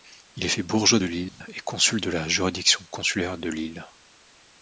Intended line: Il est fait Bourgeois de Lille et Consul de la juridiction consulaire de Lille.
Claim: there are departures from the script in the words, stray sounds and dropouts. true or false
true